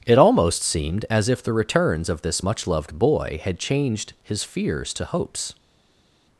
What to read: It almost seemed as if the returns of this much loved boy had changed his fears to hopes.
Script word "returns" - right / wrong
right